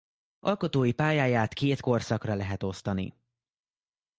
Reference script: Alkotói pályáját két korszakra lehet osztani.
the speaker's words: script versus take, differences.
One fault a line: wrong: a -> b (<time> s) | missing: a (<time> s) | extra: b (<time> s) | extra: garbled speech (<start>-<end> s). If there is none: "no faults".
no faults